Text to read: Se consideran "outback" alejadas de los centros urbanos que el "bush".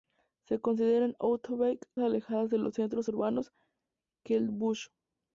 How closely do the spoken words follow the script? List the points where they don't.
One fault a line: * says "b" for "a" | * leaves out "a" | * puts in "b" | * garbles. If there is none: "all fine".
all fine